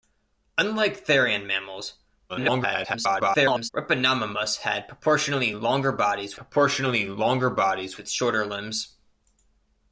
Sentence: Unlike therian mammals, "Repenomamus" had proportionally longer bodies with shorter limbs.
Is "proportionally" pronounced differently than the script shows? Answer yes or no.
no